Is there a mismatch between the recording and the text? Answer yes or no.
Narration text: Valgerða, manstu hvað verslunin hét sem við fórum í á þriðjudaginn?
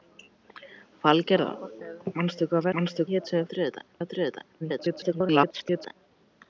yes